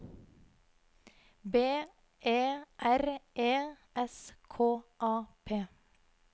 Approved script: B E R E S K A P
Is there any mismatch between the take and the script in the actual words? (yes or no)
no